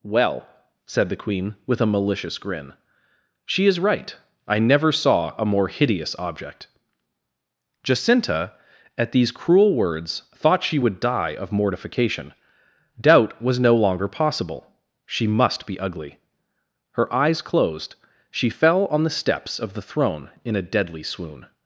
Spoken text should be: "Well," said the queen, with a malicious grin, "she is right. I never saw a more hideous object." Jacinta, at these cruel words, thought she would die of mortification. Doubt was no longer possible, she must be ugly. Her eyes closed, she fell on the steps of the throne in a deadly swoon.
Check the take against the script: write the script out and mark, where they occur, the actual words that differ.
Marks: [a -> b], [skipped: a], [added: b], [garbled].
"Well," said the queen, with a malicious grin, "she is right. I never saw a more hideous object." Jacinta, at these cruel words, thought she would die of mortification. Doubt was no longer possible, she must be ugly. Her eyes closed, she fell on the steps of the throne in a deadly swoon.